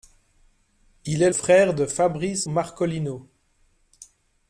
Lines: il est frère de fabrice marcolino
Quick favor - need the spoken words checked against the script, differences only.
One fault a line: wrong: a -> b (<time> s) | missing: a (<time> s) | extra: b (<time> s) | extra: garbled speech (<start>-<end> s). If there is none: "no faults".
no faults